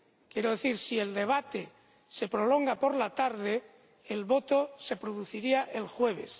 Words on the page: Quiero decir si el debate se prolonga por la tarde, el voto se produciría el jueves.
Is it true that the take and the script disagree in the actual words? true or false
false